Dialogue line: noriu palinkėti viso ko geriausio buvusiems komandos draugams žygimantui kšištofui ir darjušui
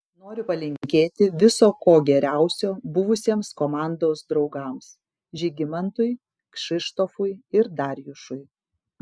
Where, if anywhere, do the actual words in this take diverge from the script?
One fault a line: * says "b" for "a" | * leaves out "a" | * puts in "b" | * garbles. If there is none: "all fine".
all fine